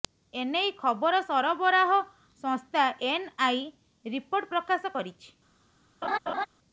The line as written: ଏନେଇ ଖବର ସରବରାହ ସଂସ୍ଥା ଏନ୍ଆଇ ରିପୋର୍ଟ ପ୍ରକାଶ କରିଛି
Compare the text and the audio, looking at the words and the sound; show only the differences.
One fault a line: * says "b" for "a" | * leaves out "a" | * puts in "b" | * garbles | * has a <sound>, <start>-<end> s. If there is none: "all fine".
* has a laugh, 6.0-6.5 s